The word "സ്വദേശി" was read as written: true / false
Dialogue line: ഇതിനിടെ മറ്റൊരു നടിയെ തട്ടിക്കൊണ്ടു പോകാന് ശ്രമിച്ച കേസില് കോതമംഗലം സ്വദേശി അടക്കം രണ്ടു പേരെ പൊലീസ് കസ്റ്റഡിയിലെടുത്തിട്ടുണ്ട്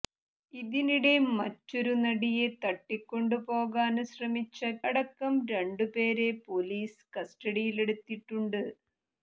false